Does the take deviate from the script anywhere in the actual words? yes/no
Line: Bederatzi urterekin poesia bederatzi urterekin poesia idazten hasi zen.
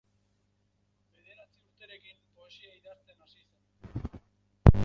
yes